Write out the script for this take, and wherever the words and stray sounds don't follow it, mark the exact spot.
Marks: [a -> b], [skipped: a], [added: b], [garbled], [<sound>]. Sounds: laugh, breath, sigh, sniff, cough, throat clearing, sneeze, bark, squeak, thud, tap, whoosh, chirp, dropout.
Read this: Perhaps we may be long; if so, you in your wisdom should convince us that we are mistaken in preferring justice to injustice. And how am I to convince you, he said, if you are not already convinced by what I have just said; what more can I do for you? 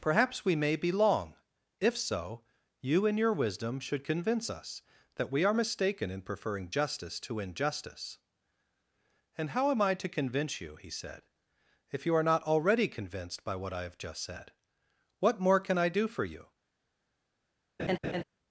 Perhaps we may be long; if so, you in your wisdom should convince us that we are mistaken in preferring justice to injustice. And how am I to convince you, he said, if you are not already convinced by what I have just said; what more can I do for you? [laugh]